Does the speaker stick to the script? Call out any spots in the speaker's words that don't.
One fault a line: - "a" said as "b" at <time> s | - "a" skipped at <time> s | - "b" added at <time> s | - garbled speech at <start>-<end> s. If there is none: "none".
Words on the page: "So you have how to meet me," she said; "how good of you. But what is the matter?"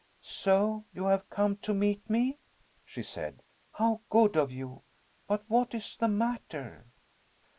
- "how" said as "come" at 1.3 s